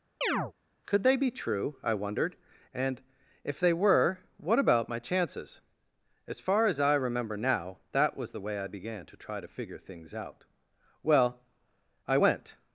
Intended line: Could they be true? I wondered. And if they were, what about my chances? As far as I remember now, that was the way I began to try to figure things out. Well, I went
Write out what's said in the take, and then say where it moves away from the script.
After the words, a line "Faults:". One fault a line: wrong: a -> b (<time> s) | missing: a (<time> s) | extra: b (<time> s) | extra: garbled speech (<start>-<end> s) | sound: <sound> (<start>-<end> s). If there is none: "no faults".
Could they be true? I wondered. And if they were, what about my chances? As far as I remember now, that was the way I began to try to figure things out. Well, I went
Faults:
sound: chirp (0.2-0.5 s)